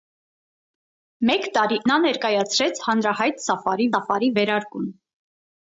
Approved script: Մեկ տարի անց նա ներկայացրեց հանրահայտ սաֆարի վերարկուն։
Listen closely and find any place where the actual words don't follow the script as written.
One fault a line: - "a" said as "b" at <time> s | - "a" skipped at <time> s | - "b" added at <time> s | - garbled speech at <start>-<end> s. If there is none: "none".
- "անց" skipped at 1.8 s
- "սաֆարի" added at 3.9 s